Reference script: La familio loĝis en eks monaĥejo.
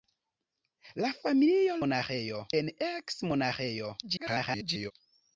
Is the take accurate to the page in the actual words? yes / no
no